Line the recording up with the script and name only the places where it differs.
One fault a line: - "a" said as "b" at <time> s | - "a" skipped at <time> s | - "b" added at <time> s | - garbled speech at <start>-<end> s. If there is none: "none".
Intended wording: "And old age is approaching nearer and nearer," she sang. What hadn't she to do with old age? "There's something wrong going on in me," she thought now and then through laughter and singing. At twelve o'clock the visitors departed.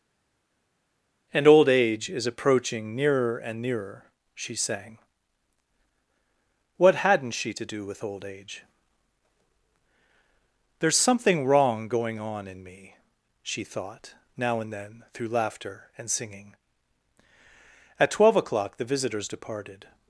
none